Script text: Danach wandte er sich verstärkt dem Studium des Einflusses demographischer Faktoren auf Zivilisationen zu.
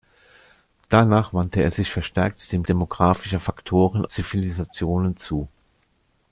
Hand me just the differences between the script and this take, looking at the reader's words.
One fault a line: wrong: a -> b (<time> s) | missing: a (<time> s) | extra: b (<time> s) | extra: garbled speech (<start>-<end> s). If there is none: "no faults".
missing: Studium des Einflusses (2.6 s)
missing: auf (4.1 s)